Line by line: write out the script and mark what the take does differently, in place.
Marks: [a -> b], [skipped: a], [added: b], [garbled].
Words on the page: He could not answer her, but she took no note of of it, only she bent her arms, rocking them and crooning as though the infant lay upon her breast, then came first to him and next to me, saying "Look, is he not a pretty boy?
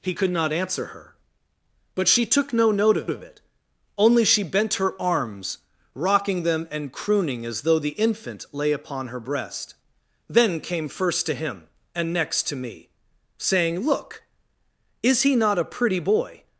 He could not answer her, but she took no note of of it, only she bent her arms, rocking them and crooning as though the infant lay upon her breast, then came first to him and next to me, saying "Look, is he not a pretty boy?